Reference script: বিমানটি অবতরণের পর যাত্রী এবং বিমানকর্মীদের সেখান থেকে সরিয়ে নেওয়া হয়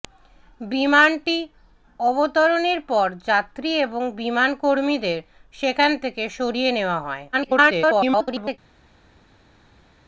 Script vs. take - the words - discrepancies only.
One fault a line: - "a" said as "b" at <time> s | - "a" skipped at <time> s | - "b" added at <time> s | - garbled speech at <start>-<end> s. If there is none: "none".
- garbled speech at 7.3-8.6 s